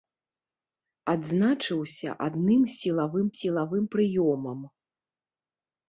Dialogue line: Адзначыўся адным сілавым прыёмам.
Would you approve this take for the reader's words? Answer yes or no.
no